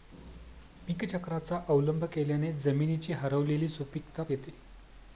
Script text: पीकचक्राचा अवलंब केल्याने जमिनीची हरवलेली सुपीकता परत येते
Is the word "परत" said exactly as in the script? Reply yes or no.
no